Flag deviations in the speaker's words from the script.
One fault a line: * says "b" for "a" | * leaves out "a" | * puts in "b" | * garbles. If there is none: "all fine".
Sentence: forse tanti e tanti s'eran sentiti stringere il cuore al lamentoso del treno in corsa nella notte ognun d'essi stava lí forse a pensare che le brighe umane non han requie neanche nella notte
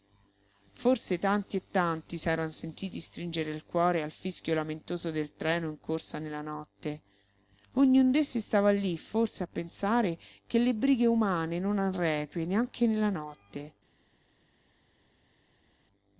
* puts in "fischio"